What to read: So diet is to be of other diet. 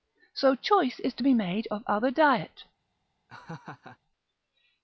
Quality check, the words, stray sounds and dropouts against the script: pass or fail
fail